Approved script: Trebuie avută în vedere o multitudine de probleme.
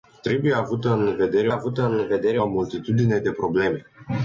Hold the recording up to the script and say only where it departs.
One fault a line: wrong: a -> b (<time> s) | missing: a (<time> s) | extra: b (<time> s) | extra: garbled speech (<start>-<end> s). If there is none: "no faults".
extra: avută în vedere (1.5 s)